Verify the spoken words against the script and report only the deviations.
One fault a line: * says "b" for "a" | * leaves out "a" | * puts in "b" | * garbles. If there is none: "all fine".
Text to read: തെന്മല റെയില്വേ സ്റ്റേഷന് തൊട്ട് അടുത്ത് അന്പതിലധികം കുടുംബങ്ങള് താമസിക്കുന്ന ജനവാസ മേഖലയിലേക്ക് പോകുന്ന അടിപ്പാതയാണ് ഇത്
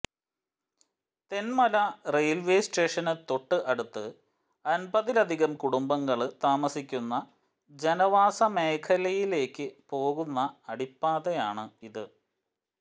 all fine